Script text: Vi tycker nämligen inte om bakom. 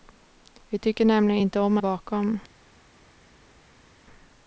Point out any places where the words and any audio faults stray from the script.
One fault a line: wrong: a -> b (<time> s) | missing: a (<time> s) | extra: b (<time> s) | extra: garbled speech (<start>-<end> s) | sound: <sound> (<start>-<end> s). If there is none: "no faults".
no faults